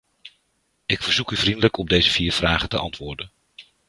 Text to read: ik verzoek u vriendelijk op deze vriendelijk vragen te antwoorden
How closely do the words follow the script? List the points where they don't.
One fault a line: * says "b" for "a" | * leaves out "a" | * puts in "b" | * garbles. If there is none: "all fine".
* says "vier" for "vriendelijk"